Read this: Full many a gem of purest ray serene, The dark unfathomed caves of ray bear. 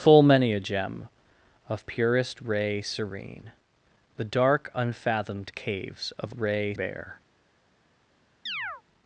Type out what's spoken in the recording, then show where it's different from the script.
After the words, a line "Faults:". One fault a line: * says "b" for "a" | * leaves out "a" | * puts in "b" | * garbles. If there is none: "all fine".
Full many a gem of purest ray serene, The dark unfathomed caves of ray bear.
Faults:
all fine